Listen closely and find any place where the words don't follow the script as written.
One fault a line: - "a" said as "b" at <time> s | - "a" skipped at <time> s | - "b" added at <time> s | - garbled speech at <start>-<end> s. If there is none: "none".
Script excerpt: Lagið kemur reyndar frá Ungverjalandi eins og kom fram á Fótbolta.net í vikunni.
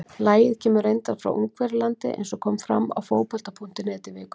none